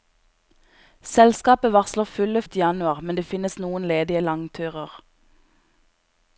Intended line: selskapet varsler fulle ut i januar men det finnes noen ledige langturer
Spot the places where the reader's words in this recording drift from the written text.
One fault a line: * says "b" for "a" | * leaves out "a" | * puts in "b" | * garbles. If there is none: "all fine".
all fine